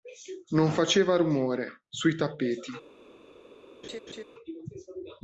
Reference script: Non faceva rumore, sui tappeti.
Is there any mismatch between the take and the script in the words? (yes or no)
no